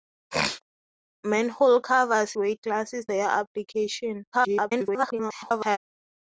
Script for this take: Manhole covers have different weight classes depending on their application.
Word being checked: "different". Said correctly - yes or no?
no